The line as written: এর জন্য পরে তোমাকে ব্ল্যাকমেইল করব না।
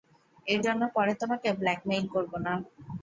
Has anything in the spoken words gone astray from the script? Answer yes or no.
no